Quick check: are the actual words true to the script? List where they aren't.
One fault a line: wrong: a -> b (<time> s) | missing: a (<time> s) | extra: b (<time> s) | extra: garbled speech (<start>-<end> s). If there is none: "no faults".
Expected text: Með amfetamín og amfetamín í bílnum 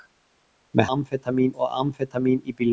no faults